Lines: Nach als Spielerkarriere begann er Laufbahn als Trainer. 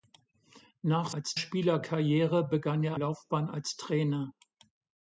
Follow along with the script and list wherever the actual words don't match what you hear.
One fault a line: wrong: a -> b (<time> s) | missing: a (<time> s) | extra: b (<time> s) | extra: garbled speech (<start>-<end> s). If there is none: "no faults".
no faults